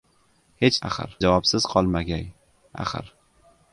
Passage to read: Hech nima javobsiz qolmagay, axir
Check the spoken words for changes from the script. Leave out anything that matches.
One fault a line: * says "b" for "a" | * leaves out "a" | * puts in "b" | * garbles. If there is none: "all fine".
* says "axir" for "nima"